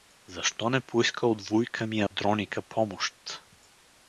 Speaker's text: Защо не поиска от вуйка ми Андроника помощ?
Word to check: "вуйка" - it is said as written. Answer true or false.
true